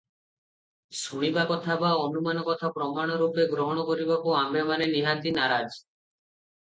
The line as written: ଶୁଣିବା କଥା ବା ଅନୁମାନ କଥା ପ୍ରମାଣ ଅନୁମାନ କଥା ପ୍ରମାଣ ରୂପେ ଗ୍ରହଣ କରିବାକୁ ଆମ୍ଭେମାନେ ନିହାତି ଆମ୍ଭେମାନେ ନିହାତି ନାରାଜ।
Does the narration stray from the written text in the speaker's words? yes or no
yes